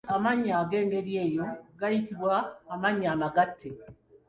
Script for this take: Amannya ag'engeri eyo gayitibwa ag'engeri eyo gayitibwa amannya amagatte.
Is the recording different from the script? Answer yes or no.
yes